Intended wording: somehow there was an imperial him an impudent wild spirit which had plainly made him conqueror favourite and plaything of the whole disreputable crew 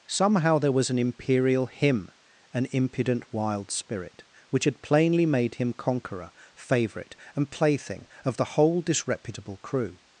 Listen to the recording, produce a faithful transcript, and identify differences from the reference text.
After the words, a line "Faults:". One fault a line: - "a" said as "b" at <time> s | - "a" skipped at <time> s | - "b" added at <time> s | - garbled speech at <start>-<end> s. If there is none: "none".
somehow there was an imperial him an impudent wild spirit which had plainly made him conqueror favourite and plaything of the whole disreputable crew
Faults:
none